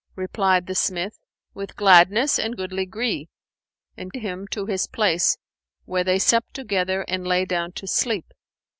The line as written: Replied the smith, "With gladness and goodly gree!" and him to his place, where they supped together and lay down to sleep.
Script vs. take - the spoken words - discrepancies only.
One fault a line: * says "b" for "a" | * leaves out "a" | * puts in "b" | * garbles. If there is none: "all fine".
all fine